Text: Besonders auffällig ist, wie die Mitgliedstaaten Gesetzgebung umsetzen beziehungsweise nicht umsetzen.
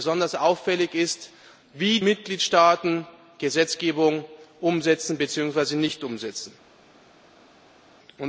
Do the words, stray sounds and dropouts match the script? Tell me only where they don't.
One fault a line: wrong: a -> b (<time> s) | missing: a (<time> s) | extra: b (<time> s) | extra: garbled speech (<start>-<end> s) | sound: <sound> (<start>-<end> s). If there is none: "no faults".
missing: die (2.0 s)